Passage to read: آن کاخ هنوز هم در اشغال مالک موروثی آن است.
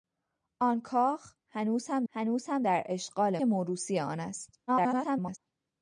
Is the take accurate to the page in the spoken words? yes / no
no